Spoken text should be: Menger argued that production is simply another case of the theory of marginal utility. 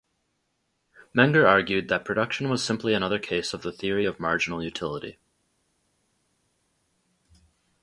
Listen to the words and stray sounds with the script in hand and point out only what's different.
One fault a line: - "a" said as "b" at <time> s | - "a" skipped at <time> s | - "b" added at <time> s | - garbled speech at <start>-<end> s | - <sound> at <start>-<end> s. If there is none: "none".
- "is" said as "was" at 2.5 s